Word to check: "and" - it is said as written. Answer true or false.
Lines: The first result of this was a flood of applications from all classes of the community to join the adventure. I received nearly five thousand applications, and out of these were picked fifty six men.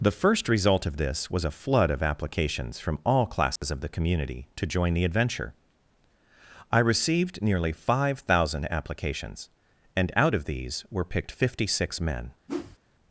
true